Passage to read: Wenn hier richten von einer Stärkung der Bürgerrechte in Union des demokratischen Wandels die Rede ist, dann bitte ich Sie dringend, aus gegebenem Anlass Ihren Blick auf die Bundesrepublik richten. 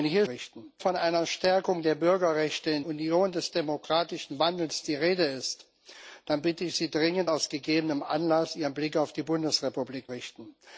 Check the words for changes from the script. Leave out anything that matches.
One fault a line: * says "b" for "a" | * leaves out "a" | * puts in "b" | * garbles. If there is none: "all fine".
all fine